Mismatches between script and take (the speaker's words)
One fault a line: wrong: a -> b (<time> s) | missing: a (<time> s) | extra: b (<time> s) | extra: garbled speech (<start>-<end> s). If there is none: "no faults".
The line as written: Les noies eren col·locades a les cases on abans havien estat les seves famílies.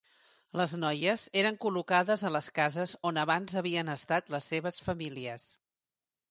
no faults